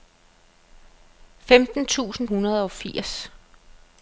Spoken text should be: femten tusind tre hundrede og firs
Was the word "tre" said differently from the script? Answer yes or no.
yes